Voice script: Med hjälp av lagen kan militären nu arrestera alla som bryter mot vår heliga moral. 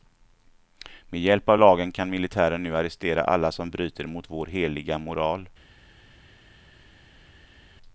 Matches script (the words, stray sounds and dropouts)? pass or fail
pass